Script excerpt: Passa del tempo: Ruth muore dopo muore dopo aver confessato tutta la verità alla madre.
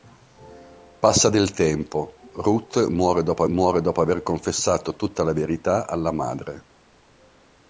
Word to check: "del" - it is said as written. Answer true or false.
true